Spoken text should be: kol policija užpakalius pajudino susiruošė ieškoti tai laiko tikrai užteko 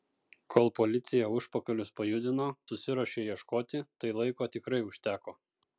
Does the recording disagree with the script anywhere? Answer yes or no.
no